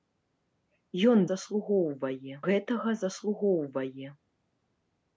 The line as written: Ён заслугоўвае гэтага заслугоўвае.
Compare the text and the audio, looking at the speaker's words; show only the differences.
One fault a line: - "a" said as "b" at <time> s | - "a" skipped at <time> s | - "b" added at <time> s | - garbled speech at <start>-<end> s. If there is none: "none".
none